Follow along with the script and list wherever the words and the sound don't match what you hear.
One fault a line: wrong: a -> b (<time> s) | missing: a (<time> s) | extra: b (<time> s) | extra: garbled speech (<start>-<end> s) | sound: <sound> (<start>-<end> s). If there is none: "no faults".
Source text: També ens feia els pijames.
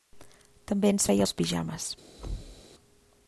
sound: thud (2.2-2.6 s)